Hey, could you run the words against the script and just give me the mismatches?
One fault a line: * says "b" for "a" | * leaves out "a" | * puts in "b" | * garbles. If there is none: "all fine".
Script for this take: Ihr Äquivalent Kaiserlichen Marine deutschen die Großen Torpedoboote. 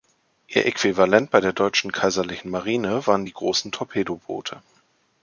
* puts in "bei der deutschen"
* says "waren" for "deutschen"